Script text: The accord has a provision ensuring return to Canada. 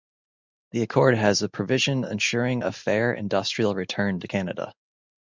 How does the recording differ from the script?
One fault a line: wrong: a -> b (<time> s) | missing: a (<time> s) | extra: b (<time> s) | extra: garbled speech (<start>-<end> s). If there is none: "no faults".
extra: a fair industrial (2.6 s)